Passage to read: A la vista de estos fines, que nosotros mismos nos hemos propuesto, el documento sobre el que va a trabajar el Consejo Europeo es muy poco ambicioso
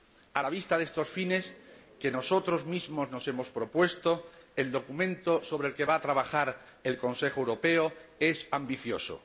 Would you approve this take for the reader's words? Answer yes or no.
no